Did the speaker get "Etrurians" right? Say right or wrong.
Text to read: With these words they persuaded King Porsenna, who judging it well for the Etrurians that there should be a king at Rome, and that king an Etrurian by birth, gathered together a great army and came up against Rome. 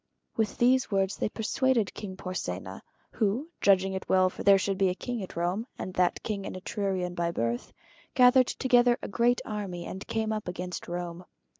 wrong